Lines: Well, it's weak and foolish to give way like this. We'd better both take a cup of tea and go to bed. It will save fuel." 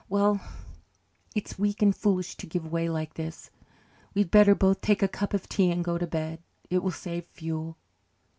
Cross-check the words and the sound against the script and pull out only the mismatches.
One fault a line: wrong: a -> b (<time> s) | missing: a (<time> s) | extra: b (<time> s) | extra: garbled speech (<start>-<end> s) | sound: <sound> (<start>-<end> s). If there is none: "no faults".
no faults